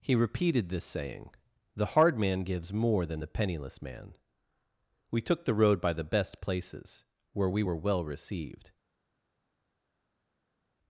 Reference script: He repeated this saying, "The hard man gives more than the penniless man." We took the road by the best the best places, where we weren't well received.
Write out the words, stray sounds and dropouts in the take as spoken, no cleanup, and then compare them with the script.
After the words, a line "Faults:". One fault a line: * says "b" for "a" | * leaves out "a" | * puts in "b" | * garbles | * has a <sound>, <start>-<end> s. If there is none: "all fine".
He repeated this saying, "The hard man gives more than the penniless man." We took the road by the best places, where we were well received.
Faults:
* leaves out "the best"
* says "were" for "weren't"